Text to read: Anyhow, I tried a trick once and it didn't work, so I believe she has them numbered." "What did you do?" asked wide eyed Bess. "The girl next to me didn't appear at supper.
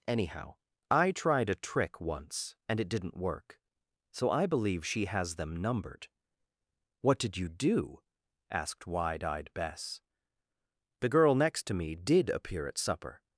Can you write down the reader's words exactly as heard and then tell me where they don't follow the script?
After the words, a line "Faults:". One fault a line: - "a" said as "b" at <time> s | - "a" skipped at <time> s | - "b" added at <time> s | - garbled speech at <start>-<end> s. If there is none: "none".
Anyhow, I tried a trick once and it didn't work, so I believe she has them numbered." "What did you do?" asked wide eyed Bess. "The girl next to me did appear at supper.
Faults:
- "didn't" said as "did" at 11.9 s